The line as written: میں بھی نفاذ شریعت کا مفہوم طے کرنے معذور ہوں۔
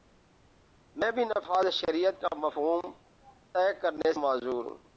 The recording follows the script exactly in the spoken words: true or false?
true